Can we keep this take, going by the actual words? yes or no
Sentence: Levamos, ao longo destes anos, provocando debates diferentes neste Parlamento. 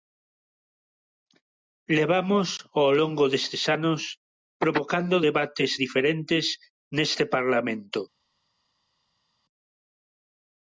yes